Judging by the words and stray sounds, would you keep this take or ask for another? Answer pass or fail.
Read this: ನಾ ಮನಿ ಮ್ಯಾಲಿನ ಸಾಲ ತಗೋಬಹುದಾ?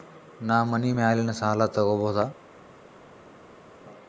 pass